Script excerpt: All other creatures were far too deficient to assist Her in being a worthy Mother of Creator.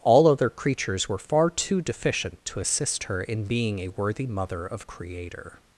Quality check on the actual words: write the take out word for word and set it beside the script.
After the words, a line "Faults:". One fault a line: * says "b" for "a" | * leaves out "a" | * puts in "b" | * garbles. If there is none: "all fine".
All other creatures were far too deficient to assist Her in being a worthy Mother of Creator.
Faults:
all fine